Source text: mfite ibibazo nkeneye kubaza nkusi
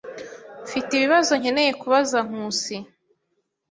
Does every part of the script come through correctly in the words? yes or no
yes